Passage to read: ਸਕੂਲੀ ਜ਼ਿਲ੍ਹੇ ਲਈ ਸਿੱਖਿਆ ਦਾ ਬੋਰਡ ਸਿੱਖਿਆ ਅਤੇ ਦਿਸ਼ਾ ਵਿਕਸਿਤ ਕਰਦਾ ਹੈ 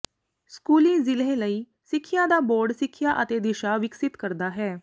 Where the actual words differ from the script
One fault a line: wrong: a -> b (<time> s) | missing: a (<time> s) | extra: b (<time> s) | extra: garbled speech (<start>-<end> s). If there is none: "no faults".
no faults